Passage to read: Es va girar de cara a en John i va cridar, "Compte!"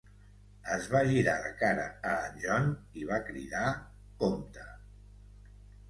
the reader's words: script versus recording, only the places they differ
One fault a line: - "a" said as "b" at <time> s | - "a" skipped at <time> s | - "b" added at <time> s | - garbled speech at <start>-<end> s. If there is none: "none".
none